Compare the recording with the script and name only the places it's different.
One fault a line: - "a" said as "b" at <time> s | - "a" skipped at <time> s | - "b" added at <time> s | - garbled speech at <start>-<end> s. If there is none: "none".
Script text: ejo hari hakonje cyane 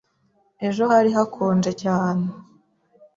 none